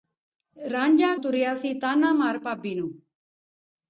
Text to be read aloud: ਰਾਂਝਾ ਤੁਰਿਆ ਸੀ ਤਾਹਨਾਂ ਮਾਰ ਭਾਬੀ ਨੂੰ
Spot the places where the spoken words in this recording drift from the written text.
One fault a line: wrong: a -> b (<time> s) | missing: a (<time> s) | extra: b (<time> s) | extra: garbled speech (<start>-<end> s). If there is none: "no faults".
no faults